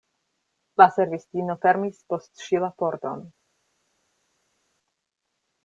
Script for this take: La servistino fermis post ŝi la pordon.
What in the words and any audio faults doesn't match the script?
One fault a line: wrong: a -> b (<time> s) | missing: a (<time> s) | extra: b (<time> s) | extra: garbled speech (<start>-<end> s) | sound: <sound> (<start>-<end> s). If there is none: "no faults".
no faults